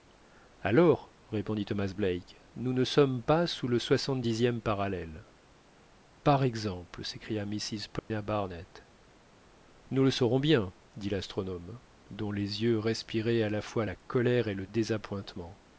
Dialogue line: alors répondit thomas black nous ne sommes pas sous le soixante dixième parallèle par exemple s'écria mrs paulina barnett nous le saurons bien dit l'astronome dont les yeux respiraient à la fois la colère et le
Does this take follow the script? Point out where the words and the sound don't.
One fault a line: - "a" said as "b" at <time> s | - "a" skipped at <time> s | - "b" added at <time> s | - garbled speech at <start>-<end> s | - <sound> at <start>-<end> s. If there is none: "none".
- dropout at 8.0-8.1 s